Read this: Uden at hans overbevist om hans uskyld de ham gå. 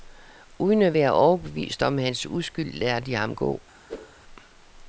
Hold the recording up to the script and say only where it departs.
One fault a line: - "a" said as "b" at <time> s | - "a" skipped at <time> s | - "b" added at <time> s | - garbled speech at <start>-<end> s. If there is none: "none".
- "hans" said as "være" at 0.9 s
- "lader" added at 2.7 s